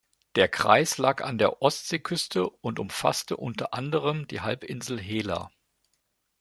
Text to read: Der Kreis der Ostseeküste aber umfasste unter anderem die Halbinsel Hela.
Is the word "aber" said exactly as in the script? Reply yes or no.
no